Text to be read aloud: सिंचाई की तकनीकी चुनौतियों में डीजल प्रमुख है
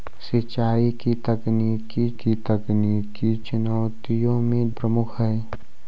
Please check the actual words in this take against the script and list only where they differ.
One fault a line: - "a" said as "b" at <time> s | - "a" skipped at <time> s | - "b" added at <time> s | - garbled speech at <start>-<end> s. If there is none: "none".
- "की तकनीकी" added at 2.2 s
- "डीजल" skipped at 4.7 s